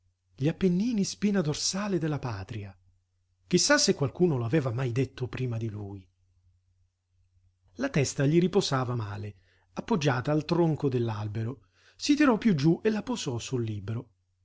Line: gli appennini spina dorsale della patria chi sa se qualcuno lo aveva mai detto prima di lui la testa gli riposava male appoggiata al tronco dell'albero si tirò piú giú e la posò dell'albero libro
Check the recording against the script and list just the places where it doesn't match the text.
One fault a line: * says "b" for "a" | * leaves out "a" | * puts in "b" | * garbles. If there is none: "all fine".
* says "sul" for "dell'albero"